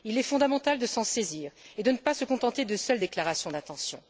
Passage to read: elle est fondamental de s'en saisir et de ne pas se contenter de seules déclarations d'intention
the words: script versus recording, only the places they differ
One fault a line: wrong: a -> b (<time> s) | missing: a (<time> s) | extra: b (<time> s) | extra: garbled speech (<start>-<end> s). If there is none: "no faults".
wrong: elle -> il (0.0 s)